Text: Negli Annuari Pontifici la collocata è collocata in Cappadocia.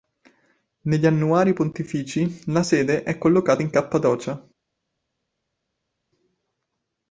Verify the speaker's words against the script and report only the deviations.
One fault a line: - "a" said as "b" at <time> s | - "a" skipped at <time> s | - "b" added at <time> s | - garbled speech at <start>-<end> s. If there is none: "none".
- "collocata" said as "sede" at 2.6 s